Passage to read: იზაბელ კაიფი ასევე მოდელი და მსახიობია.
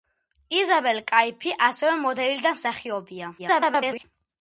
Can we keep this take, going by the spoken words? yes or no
no